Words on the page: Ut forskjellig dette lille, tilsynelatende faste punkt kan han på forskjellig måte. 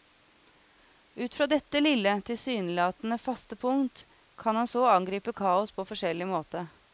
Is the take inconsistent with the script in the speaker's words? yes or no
yes